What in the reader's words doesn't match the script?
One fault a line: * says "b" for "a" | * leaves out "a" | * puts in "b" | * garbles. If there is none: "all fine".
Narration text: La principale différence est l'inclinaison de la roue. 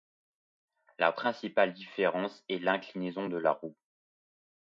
all fine